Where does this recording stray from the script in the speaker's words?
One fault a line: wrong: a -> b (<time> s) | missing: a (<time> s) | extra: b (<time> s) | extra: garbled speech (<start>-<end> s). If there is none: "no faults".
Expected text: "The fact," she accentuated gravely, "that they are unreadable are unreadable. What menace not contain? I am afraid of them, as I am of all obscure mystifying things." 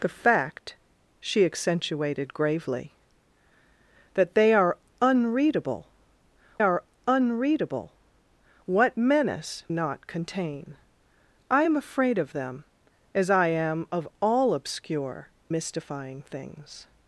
no faults